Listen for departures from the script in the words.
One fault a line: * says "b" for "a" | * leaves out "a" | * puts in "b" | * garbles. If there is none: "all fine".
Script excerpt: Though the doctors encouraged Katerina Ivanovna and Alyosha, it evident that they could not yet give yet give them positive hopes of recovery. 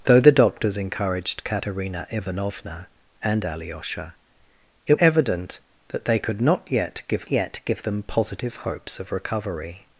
all fine